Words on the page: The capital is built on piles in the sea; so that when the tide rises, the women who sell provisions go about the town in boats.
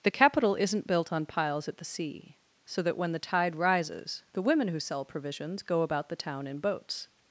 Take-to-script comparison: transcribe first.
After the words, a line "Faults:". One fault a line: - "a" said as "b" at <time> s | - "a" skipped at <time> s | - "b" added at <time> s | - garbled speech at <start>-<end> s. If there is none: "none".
The capital isn't built on piles at the sea; so that when the tide rises, the women who sell provisions go about the town in boats.
Faults:
- "is" said as "isn't" at 0.6 s
- "in" said as "at" at 1.7 s